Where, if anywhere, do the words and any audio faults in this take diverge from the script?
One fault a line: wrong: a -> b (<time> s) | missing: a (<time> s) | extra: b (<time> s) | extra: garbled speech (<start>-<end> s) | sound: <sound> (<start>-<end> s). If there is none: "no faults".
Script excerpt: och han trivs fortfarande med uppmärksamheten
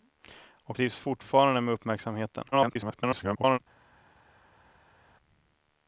missing: han (0.8 s)
extra: garbled speech (2.5-3.6 s)